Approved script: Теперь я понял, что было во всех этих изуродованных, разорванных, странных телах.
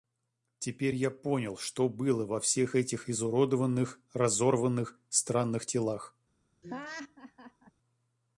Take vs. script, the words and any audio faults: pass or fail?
fail